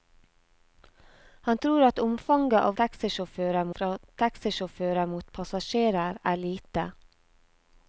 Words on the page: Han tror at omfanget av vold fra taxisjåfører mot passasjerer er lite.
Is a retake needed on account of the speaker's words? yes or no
yes